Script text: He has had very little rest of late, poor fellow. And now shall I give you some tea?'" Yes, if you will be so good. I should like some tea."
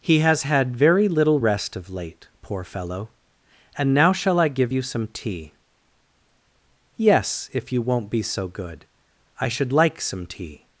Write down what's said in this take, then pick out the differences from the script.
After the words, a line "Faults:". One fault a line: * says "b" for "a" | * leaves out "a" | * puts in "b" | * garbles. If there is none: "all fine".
He has had very little rest of late, poor fellow. And now shall I give you some tea?'" Yes, if you won't be so good. I should like some tea."
Faults:
* says "won't" for "will"